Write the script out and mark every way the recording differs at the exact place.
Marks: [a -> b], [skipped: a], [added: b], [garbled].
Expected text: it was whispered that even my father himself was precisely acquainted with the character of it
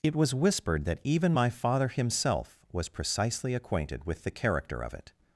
it was whispered that even my father himself was precisely acquainted with the character of it